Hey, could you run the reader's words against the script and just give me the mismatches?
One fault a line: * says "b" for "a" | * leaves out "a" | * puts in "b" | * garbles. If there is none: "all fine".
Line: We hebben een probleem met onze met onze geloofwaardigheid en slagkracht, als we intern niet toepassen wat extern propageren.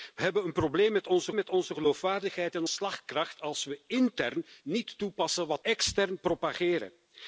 all fine